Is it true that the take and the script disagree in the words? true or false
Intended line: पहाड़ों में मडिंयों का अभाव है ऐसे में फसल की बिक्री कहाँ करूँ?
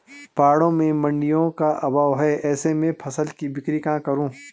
false